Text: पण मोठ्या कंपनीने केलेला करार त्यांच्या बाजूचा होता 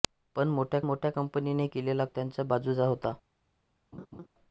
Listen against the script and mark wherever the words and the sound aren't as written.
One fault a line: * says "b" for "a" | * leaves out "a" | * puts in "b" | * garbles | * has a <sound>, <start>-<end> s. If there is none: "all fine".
* puts in "मोठ्या"
* leaves out "करार"
* has a laugh, 3.9-4.3 s